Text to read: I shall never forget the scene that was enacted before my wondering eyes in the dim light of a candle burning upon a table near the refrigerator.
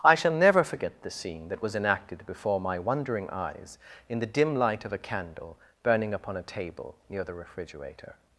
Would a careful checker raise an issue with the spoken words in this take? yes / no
no